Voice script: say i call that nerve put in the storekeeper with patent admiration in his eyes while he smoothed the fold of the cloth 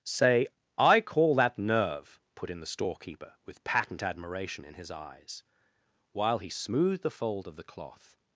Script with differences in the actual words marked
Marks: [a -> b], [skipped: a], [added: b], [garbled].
say i call that nerve put in the storekeeper with patent admiration in his eyes while he smoothed the fold of the cloth